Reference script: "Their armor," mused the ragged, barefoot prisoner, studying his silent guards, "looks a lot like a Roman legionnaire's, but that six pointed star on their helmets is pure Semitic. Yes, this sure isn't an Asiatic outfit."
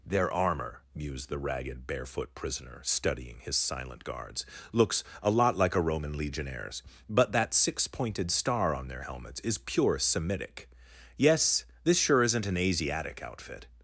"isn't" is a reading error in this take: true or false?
false